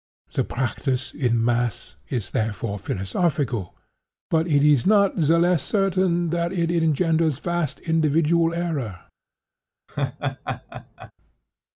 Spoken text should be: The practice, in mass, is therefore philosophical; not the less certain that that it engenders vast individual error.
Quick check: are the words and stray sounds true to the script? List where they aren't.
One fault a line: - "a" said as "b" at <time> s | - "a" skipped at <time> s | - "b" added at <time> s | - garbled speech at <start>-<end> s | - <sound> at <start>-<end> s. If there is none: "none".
- "but it is" added at 4.3 s
- "that" skipped at 6.5 s
- laugh at 9.9-11.1 s